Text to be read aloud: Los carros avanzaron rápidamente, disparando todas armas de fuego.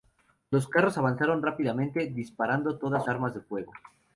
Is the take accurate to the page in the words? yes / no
yes